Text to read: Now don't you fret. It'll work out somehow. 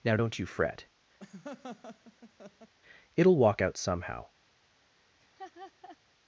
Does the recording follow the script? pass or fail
fail